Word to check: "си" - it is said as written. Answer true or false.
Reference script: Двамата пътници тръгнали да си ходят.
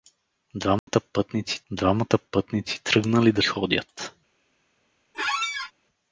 false